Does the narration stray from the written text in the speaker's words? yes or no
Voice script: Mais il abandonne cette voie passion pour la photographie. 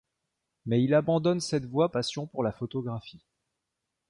no